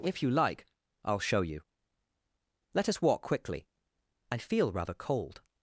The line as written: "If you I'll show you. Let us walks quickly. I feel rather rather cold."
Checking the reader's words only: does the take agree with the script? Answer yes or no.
no